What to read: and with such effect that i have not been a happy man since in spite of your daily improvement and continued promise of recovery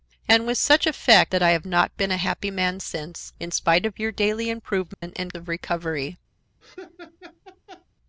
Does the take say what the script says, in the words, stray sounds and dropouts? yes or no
no